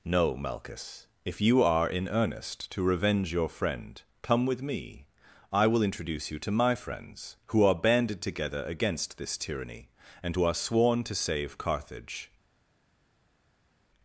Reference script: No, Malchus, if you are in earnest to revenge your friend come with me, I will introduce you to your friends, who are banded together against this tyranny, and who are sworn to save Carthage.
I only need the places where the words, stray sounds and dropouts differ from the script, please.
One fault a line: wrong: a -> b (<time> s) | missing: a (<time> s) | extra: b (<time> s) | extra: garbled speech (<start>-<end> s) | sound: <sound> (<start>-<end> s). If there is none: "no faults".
wrong: your -> my (6.5 s)